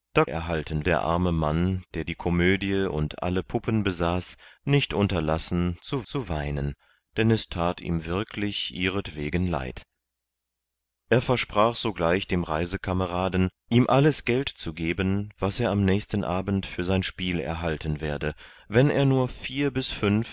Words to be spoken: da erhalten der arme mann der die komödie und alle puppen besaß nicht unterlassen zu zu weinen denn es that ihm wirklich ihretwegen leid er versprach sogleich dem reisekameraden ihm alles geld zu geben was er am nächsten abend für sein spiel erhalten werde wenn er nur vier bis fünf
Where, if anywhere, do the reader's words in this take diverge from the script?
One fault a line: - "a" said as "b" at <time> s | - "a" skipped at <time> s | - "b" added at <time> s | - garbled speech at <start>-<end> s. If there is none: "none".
none